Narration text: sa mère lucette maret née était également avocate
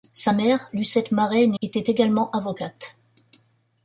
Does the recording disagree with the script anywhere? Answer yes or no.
no